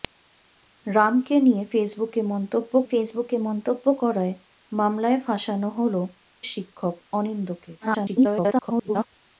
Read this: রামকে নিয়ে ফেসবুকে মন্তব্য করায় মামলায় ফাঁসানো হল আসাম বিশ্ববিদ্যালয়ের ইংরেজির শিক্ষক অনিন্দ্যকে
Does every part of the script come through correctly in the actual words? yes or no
no